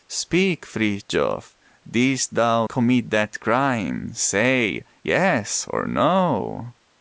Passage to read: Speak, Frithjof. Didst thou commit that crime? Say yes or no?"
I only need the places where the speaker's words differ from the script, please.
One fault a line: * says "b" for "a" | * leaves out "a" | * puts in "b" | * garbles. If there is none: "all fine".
all fine